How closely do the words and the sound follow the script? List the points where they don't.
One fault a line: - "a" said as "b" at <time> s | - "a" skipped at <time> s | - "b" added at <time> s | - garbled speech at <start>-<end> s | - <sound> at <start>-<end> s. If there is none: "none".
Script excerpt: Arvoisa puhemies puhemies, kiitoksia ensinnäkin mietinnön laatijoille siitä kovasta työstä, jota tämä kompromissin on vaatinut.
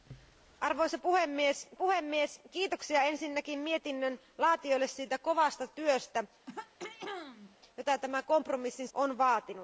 - throat clearing at 6.5-7.6 s